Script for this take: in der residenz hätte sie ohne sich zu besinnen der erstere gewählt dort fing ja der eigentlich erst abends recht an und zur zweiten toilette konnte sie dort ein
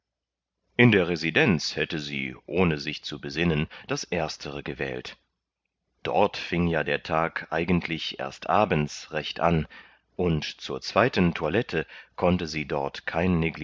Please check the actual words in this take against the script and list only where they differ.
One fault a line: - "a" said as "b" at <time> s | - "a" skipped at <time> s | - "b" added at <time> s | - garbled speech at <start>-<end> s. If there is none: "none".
- "der" said as "das" at 3.9 s
- "tag" added at 7.0 s
- "ein" said as "kein" at 13.1 s